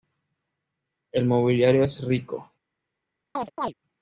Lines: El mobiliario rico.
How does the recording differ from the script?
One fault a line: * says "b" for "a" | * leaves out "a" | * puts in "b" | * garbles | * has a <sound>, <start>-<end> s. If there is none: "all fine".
* puts in "es"
* has a chirp, 3.4-3.7 s